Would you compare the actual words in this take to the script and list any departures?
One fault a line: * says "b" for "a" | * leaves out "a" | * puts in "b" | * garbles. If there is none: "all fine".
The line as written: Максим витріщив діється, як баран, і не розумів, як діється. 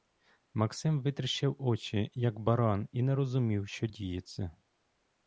* says "очі" for "діється"
* says "що" for "як"